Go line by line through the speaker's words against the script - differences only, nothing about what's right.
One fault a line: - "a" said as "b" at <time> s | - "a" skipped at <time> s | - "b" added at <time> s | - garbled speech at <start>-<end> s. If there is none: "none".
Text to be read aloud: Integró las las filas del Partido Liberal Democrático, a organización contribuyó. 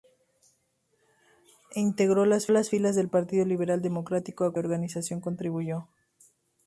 none